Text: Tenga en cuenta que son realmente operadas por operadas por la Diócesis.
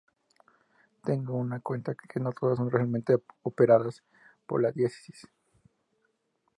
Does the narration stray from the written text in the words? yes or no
yes